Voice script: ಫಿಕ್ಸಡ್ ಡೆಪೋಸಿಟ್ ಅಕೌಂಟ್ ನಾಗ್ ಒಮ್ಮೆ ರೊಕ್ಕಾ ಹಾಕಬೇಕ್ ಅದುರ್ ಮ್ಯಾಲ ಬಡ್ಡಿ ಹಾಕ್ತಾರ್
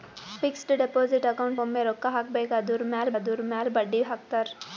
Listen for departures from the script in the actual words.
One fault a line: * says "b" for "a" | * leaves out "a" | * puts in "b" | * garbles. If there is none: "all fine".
* leaves out "ನಾಗ್"
* puts in "ಅದುರ್ ಮ್ಯಾಲ"